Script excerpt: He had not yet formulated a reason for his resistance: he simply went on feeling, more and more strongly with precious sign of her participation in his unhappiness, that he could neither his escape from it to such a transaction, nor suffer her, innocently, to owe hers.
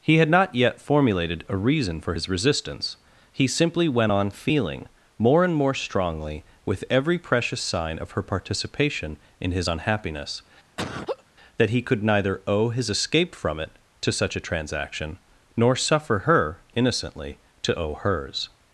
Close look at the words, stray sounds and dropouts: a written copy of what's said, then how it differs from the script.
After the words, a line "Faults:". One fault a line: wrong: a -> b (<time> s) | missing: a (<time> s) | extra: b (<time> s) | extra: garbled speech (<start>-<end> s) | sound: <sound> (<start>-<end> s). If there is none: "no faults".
He had not yet formulated a reason for his resistance: he simply went on feeling, more and more strongly with every precious sign of her participation in his unhappiness, that he could neither owe his escape from it to such a transaction, nor suffer her, innocently, to owe hers.
Faults:
extra: every (6.9 s)
sound: laugh (10.8-11.2 s)
extra: owe (12.5 s)